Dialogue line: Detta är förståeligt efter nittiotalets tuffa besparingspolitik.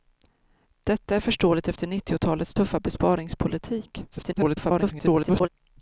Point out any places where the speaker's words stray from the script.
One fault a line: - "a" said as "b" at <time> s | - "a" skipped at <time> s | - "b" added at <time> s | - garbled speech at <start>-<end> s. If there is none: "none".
- garbled speech at 4.1-5.5 s